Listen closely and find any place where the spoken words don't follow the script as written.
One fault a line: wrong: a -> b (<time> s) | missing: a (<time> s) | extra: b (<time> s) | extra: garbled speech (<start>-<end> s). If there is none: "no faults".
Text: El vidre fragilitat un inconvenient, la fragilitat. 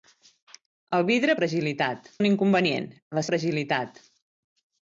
no faults